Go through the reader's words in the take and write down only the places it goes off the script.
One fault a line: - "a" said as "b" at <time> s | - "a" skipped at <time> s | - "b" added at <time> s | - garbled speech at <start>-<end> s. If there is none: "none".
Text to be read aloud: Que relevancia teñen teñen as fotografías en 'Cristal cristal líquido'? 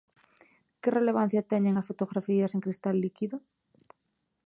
- "teñen" skipped at 1.8 s
- "cristal" skipped at 2.9 s